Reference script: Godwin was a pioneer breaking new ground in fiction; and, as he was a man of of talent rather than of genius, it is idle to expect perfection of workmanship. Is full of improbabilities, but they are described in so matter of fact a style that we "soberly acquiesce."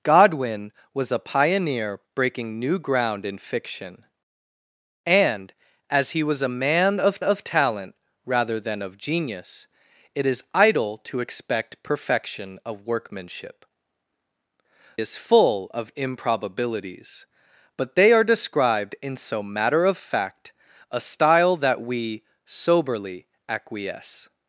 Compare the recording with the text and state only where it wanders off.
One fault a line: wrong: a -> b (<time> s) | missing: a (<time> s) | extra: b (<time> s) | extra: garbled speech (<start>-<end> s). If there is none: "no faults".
no faults